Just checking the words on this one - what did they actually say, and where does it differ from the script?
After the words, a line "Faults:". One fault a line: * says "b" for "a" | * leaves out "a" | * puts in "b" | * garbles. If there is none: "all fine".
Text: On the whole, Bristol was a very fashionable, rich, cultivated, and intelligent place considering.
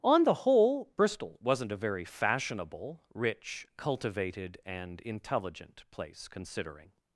On the whole, Bristol wasn't a very fashionable, rich, cultivated, and intelligent place considering.
Faults:
* says "wasn't" for "was"